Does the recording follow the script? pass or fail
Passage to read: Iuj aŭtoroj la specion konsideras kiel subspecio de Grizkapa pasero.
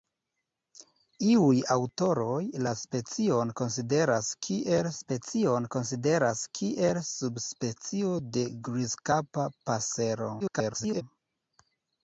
fail